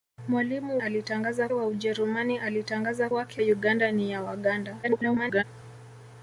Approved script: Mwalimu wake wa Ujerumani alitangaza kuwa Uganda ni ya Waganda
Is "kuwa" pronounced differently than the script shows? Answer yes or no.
yes